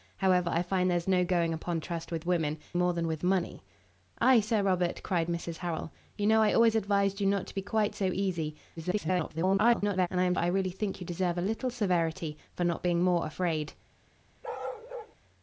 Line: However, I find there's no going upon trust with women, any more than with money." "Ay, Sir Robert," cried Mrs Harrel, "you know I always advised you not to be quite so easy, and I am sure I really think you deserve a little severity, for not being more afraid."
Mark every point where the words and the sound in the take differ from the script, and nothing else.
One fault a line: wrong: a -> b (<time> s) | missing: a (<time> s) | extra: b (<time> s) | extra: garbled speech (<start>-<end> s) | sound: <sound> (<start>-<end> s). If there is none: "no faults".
missing: any (2.6 s)
extra: garbled speech (8.8-10.1 s)
missing: sure (10.3 s)
sound: bark (14.4-15.2 s)